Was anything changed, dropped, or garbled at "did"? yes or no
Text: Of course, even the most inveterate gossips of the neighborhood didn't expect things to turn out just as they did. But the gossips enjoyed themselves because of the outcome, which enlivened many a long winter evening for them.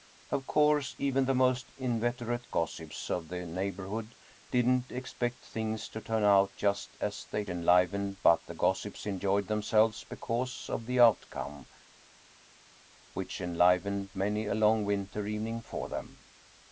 yes